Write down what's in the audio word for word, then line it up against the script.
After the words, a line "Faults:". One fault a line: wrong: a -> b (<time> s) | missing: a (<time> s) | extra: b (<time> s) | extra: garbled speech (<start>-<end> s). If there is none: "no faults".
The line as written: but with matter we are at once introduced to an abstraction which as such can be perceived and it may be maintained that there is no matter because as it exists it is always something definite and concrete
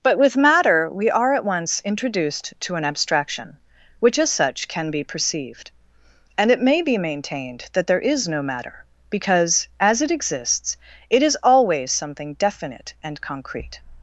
but with matter we are at once introduced to an abstraction which as such can be perceived and it may be maintained that there is no matter because as it exists it is always something definite and concrete
Faults:
no faults